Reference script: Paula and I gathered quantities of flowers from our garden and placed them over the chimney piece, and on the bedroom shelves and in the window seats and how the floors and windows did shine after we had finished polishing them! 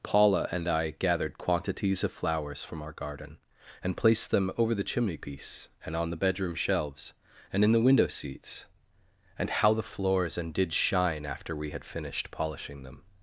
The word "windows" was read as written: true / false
false